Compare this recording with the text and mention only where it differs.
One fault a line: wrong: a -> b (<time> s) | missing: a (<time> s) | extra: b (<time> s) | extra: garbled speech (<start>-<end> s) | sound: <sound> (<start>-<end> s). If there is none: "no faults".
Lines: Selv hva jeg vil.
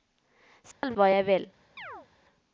sound: dropout (0.7-0.8 s)
sound: chirp (1.8-2.1 s)